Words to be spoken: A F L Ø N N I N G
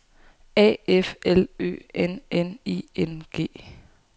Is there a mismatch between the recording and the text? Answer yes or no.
no